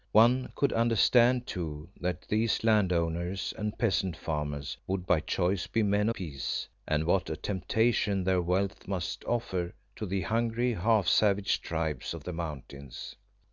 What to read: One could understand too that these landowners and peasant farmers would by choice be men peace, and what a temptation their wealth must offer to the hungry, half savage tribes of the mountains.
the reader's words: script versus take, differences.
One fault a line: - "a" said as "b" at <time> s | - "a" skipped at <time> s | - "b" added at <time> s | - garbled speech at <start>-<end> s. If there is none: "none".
none